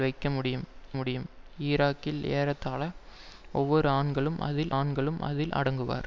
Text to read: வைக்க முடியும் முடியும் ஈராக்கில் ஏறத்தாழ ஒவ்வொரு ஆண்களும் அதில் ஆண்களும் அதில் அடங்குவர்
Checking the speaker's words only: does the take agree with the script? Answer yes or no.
yes